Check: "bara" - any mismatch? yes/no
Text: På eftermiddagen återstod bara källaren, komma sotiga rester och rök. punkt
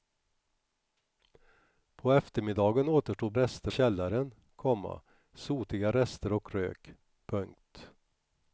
yes